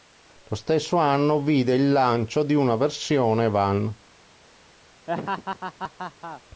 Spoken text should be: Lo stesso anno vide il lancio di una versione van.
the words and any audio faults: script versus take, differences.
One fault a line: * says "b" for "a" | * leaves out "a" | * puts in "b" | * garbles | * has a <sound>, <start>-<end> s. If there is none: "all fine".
* has a laugh, 5.1-6.4 s